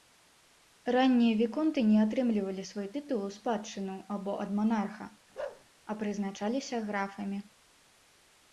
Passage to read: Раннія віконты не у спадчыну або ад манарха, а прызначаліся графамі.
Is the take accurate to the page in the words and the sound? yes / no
no